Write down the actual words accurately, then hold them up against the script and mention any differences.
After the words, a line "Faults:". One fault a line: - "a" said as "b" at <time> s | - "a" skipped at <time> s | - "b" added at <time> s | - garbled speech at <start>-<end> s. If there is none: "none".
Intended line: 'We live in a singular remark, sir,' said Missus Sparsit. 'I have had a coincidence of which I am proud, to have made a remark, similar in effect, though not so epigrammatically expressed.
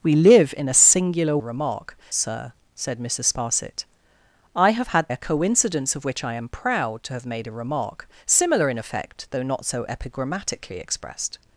'We live in a singular remark, sir,' said Missus Sparsit. 'I have had a coincidence of which I am proud, to have made a remark, similar in effect, though not so epigrammatically expressed.
Faults:
none